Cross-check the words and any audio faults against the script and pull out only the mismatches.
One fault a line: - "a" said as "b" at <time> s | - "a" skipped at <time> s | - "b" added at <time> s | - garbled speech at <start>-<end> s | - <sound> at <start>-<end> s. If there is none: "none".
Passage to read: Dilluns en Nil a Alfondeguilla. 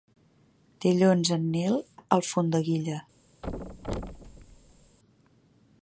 - thud at 3.4-5.0 s